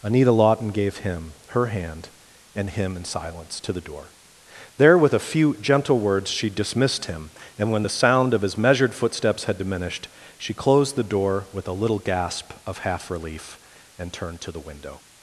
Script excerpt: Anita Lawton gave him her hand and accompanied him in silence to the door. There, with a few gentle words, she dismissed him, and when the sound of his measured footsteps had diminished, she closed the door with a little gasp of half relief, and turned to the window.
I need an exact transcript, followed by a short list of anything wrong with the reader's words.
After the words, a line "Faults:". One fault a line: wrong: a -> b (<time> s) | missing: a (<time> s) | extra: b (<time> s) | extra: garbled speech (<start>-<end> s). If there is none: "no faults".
Anita Lawton gave him her hand and him in silence to the door. There, with a few gentle words, she dismissed him, and when the sound of his measured footsteps had diminished, she closed the door with a little gasp of half relief, and turned to the window.
Faults:
missing: accompanied (2.7 s)